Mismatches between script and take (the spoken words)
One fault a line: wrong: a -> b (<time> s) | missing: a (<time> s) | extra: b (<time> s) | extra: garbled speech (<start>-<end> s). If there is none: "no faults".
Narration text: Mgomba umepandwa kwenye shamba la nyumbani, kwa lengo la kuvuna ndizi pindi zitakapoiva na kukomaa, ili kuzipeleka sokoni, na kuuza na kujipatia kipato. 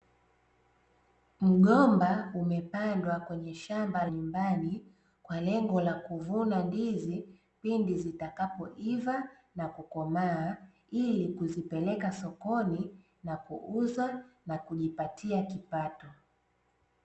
missing: la (4.0 s)